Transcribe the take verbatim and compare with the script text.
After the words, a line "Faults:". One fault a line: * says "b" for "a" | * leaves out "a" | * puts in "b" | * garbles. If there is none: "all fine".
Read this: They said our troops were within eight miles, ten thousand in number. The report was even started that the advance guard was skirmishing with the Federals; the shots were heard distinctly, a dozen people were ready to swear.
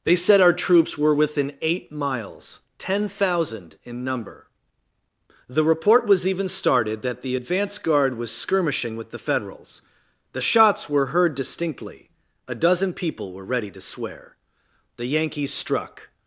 They said our troops were within eight miles, ten thousand in number. The report was even started that the advance guard was skirmishing with the Federals; the shots were heard distinctly, a dozen people were ready to swear. The Yankees struck
Faults:
* puts in "The Yankees struck"